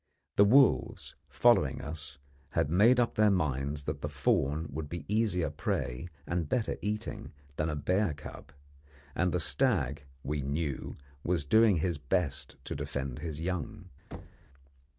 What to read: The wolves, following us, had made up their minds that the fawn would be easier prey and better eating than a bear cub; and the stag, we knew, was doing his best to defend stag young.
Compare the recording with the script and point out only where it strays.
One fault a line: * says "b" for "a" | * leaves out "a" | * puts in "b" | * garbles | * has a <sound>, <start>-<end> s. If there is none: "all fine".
* says "his" for "stag"
* has a thud, 14.1-14.5 s